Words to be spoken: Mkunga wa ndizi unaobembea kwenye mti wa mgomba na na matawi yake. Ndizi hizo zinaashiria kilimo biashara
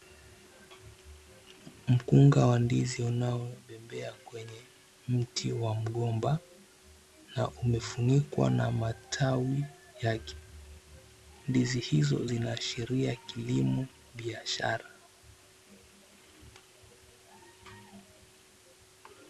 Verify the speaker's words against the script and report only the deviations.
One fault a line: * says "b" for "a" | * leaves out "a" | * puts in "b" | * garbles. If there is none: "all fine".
* puts in "umefunikwa"